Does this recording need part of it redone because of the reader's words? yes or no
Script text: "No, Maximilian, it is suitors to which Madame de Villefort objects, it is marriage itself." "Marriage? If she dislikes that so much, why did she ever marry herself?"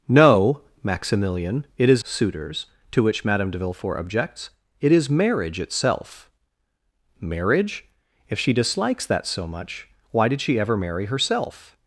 no